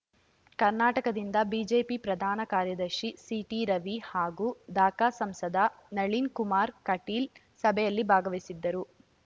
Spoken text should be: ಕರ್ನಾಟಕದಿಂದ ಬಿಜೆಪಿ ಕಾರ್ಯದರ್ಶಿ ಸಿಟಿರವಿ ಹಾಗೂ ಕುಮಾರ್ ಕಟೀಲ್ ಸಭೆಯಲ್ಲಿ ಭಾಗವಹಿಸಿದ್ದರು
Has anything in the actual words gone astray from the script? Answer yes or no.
yes